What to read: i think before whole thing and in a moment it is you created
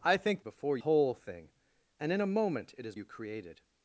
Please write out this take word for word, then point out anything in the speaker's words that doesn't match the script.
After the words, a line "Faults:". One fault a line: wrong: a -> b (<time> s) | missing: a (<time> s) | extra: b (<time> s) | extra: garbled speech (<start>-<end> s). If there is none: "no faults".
i think before whole thing and in a moment it is you created
Faults:
no faults